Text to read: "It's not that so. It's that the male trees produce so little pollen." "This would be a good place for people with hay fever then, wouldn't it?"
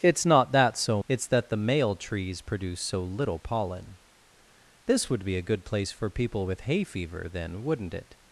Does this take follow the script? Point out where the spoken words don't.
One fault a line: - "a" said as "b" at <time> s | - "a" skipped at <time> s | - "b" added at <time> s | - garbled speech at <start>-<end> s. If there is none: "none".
none